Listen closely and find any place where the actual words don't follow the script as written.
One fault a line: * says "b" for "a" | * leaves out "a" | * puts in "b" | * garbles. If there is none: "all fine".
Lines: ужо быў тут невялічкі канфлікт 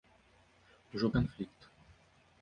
* leaves out "быў тут невялічкі"